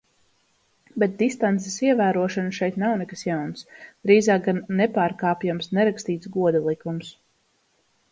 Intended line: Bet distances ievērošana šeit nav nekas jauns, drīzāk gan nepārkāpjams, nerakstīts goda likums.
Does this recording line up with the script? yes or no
yes